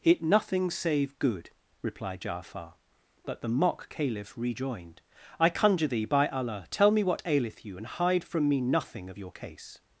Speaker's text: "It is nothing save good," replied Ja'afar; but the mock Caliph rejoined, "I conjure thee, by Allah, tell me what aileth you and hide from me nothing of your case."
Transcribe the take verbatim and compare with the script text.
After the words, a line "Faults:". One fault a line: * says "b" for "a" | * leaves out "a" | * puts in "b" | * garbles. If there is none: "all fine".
"It nothing save good," replied Ja'afar; but the mock Caliph rejoined, "I conjure thee, by Allah, tell me what aileth you and hide from me nothing of your case."
Faults:
* leaves out "is"